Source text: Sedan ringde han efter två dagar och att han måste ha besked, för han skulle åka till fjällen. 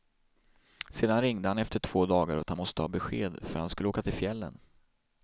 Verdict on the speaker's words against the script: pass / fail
pass